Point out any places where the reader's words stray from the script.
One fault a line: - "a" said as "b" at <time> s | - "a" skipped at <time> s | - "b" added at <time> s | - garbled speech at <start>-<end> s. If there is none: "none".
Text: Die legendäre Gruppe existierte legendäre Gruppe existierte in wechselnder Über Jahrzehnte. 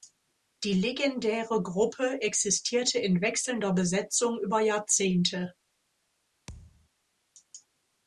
- "legendäre Gruppe existierte" skipped at 3.0 s
- "Besetzung" added at 3.7 s